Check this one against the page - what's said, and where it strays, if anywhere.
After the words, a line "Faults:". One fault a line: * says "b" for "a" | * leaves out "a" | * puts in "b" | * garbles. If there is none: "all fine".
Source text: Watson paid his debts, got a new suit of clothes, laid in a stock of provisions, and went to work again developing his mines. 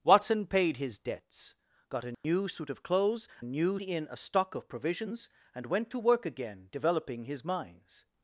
Watson paid his debts, got a new suit of clothes, new in a stock of provisions, and went to work again developing his mines.
Faults:
* says "new" for "laid"